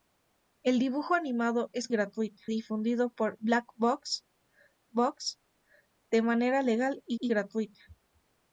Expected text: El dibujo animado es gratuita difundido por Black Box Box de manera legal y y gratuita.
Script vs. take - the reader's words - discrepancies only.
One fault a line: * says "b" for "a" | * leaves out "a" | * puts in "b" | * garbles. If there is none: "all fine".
all fine